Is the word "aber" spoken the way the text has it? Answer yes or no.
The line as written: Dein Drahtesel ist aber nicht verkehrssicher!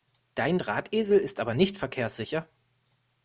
yes